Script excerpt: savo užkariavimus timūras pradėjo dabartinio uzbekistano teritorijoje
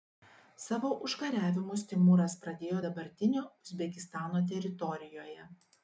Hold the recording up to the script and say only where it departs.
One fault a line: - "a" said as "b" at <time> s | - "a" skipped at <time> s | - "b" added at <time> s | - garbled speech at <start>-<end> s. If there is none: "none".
none